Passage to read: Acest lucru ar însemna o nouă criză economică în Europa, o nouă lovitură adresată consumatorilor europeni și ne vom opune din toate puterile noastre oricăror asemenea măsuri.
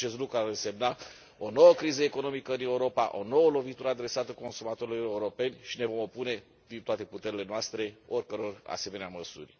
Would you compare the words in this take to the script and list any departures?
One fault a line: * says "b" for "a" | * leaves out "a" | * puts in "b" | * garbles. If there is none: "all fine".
all fine